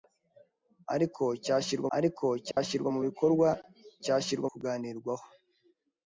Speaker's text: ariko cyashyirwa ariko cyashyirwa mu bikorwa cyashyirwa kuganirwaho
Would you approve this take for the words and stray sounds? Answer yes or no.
no